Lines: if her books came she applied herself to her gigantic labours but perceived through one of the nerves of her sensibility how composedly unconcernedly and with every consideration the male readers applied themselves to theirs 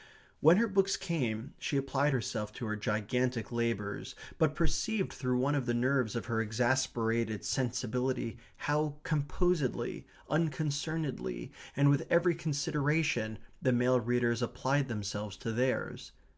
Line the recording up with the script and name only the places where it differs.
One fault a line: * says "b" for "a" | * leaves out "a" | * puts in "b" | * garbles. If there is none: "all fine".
* says "when" for "if"
* puts in "exasperated"